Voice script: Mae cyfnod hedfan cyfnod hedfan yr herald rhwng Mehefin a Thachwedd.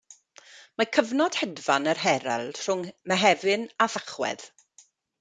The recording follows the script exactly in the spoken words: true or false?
false